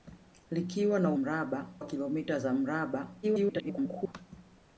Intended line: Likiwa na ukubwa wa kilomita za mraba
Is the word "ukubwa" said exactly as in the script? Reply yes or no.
no